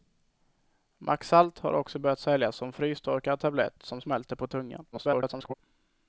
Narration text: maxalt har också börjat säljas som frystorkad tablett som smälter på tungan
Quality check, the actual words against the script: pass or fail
fail